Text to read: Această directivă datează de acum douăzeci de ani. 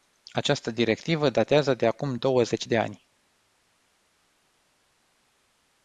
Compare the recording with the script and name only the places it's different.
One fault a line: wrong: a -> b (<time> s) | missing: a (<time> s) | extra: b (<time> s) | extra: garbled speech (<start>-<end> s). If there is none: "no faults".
no faults